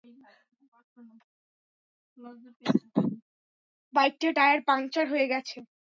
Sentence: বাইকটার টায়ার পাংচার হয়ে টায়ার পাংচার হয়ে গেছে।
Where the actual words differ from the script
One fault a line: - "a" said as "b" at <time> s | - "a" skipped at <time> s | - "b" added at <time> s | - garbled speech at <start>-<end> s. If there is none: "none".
- "টায়ার পাংচার হয়ে" skipped at 5.3 s